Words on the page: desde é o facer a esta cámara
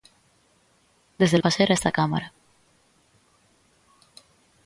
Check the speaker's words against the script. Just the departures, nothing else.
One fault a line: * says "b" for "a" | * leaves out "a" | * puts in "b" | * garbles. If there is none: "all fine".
all fine